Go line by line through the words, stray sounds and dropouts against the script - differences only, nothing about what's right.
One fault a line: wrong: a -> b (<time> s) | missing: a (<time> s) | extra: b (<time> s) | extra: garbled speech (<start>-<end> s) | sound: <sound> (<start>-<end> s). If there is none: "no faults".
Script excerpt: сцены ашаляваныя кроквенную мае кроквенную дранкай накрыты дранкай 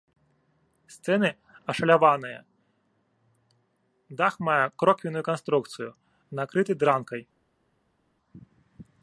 wrong: кроквенную -> дах (4.2 s)
wrong: дранкай -> канструкцыю (5.3 s)